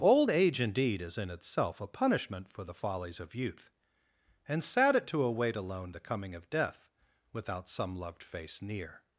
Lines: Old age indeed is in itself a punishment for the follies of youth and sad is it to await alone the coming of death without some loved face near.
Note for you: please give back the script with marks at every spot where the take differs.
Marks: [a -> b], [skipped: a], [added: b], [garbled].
Old age indeed is in itself a punishment for the follies of youth and sad [skipped: is] it to await alone the coming of death without some loved face near.